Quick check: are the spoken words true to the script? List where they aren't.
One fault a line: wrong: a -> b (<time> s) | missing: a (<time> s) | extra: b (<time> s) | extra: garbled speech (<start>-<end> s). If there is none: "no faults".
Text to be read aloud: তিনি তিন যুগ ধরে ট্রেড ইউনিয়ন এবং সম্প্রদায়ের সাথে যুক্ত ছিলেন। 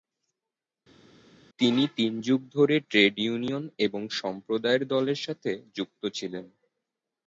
extra: দলের (4.9 s)